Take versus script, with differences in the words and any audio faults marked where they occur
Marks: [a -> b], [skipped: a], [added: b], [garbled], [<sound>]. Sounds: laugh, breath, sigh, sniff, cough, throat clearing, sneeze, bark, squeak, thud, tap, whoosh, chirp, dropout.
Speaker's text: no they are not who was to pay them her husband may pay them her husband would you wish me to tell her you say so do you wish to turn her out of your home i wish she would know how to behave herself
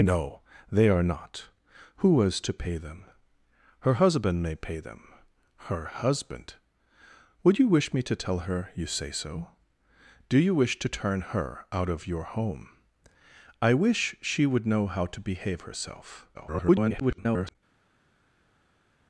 no they are not who was to pay them her husband may pay them her husband would you wish me to tell her you say so do you wish to turn her out of your home i wish she would know how to behave herself [garbled]